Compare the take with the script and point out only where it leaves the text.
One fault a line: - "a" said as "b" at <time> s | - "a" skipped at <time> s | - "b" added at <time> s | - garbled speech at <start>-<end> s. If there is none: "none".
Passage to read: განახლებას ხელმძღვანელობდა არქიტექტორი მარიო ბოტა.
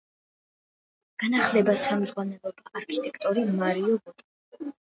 none